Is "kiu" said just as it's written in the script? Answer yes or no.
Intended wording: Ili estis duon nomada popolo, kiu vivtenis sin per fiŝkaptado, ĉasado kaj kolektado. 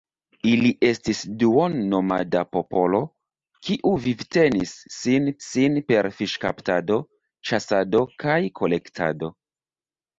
yes